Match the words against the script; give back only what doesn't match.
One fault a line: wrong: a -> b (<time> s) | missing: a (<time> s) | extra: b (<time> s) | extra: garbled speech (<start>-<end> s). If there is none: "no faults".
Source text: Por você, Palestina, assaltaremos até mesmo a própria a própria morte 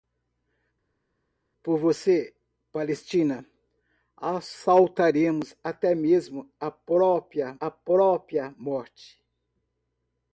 no faults